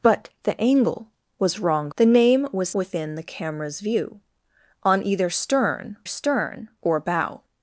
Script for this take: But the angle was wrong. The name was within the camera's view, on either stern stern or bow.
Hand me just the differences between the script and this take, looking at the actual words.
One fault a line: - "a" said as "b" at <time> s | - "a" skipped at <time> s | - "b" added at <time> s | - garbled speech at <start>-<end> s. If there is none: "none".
none